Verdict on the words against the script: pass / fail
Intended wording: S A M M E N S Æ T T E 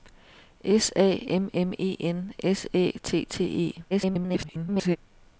fail